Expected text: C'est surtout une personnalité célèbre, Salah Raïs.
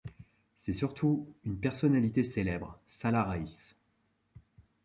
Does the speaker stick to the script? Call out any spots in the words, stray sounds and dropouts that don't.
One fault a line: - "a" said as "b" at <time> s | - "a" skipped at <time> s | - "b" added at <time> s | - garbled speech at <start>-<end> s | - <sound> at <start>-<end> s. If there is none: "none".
none